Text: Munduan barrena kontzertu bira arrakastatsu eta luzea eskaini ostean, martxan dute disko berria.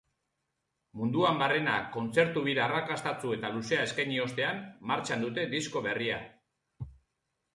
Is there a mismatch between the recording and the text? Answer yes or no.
no